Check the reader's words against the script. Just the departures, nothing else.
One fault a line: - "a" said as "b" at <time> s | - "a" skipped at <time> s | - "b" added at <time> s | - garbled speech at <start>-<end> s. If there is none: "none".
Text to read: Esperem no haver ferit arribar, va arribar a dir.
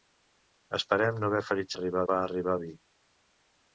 none